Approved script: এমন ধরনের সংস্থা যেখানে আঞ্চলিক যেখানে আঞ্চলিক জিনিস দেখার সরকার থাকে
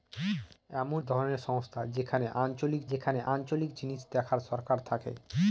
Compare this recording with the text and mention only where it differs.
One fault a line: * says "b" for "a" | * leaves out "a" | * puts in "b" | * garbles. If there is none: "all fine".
all fine